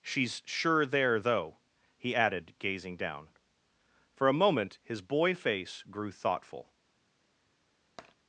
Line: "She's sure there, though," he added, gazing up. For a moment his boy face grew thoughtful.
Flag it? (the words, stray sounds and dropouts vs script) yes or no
yes